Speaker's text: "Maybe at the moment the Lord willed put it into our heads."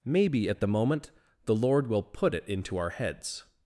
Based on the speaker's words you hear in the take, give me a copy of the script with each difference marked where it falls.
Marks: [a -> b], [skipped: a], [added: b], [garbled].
"Maybe at the moment the Lord [willed -> will] put it into our heads."